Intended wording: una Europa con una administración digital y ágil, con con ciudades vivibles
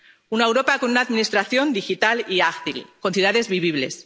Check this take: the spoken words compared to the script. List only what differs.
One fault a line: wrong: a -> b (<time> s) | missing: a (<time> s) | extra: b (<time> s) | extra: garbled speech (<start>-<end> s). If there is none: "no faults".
missing: con (3.1 s)